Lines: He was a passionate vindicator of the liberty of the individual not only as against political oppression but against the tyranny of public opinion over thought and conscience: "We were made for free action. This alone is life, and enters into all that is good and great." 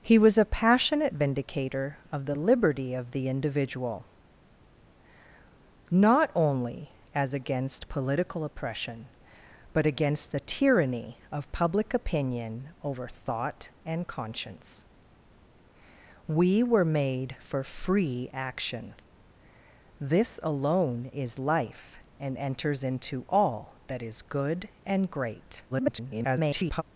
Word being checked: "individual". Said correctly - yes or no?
yes